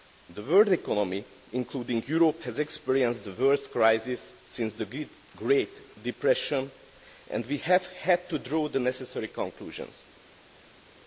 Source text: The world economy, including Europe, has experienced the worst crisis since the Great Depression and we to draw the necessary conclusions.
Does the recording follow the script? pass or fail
fail